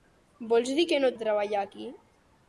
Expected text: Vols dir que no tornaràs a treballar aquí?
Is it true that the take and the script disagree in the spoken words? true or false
true